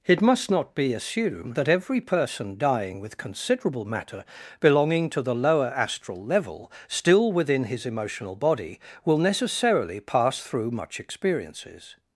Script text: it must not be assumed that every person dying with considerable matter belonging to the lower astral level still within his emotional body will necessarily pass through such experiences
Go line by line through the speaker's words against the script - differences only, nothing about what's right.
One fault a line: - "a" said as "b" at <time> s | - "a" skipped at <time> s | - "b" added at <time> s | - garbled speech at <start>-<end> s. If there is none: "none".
- "such" said as "much" at 10.7 s